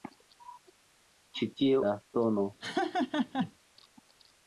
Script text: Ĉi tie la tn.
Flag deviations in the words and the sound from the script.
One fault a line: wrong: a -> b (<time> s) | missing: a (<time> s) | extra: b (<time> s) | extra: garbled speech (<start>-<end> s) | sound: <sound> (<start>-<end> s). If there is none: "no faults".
sound: laugh (2.6-3.5 s)